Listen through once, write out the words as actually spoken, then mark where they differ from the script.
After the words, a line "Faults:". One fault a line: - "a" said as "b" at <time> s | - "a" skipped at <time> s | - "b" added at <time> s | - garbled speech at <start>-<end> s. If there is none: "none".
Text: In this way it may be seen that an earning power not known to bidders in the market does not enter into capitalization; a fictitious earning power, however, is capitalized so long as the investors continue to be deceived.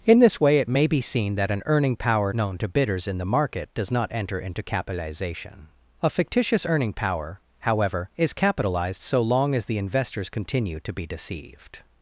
In this way it may be seen that an earning power known to bidders in the market does not enter into capitalization; a fictitious earning power, however, is capitalized so long as the investors continue to be deceived.
Faults:
- "not" skipped at 2.3 s